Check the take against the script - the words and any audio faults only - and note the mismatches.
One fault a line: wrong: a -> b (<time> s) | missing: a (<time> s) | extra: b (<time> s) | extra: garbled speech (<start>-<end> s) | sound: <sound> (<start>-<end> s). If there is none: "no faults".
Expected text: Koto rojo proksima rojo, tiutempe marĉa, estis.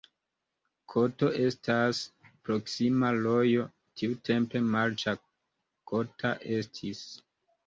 wrong: rojo -> estas (1.5 s)
extra: kota (5.9 s)